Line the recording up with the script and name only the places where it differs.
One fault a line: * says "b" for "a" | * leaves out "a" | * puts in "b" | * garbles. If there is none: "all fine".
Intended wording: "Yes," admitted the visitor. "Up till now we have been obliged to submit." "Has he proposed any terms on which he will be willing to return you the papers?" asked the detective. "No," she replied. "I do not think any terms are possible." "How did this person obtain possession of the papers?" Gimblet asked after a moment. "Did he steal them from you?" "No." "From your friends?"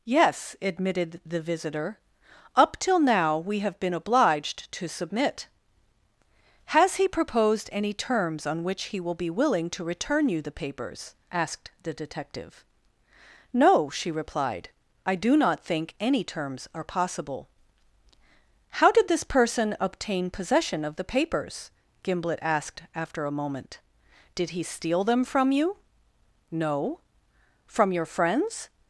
all fine